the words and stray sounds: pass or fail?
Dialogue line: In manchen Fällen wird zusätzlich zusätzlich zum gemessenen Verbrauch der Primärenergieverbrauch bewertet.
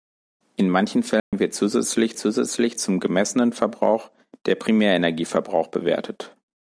fail